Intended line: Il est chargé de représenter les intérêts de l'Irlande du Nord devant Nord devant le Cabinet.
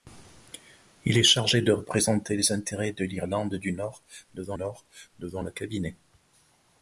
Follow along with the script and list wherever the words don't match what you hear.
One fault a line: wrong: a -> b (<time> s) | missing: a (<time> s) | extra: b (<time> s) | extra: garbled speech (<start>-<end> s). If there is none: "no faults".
no faults